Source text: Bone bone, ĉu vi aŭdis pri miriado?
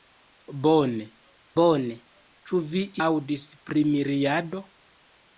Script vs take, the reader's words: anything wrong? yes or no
no